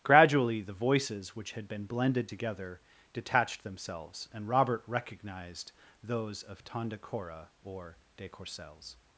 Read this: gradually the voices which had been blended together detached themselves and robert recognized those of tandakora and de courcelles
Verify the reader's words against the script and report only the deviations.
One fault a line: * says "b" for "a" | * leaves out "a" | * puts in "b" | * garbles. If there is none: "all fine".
* says "or" for "and"